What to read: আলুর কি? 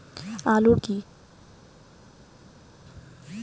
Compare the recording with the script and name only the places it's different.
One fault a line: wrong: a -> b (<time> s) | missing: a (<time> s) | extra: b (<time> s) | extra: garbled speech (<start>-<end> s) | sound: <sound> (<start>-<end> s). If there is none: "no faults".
no faults